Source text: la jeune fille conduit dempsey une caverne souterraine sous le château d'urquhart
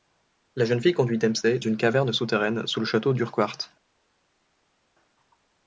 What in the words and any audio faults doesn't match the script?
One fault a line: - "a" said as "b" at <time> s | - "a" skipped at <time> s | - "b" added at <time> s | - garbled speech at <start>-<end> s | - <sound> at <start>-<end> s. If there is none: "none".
none